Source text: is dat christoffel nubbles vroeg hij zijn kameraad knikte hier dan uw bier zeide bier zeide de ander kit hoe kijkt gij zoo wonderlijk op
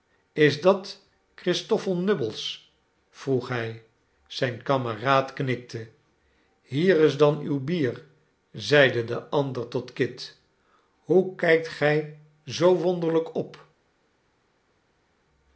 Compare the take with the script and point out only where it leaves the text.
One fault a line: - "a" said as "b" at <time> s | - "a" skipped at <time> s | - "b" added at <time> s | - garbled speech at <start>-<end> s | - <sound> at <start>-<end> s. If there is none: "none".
- "is" added at 7.0 s
- "bier zeide" skipped at 9.0 s
- "tot" added at 9.7 s